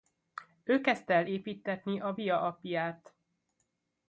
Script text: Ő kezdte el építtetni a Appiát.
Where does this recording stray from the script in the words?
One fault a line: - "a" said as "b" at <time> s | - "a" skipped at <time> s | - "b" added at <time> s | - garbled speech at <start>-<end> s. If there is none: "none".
- "Via" added at 2.1 s